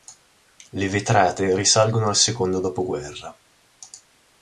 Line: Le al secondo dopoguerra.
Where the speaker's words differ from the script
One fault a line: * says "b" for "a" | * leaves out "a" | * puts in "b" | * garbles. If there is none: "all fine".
* puts in "vetrate risalgono"